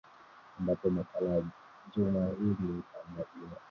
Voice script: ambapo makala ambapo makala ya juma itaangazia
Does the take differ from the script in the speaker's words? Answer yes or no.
yes